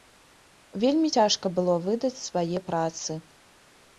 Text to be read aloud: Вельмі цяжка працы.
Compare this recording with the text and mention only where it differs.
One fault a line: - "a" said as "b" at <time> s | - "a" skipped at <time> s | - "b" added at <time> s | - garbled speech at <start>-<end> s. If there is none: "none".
- "было выдаць свае" added at 1.6 s